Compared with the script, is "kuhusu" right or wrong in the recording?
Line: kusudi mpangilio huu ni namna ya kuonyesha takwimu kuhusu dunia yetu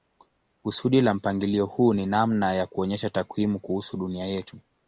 right